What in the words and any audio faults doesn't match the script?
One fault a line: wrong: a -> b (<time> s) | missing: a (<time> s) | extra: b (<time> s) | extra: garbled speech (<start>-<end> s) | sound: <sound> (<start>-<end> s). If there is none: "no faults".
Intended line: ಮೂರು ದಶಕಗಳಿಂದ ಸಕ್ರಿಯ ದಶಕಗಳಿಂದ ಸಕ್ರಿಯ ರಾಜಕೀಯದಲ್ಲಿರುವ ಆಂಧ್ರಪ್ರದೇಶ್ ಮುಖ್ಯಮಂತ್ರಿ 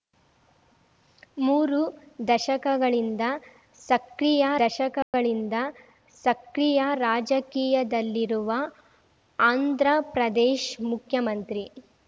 sound: dropout (5.0-5.1 s)